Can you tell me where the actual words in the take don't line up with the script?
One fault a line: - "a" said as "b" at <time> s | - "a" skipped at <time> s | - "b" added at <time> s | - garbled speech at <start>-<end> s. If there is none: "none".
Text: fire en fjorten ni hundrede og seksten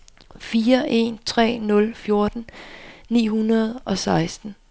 - "tre nul" added at 1.2 s